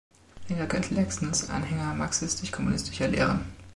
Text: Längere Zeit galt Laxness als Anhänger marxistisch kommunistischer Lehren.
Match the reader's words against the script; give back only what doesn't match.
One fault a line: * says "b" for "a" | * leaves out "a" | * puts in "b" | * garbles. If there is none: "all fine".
* leaves out "Zeit"
* leaves out "als"